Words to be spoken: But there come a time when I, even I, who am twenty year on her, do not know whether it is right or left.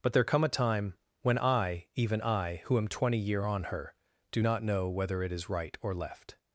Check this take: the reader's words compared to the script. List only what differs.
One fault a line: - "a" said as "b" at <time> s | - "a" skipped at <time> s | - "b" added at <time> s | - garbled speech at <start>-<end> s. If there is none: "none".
none